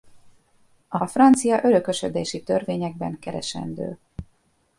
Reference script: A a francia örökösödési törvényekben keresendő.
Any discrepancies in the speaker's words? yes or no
no